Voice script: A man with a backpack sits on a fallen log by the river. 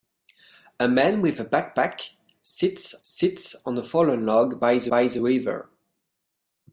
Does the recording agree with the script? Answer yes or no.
no